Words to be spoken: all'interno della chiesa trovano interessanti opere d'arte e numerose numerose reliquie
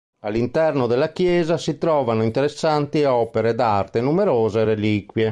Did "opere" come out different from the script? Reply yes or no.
no